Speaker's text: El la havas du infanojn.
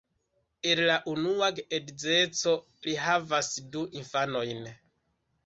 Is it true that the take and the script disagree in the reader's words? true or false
true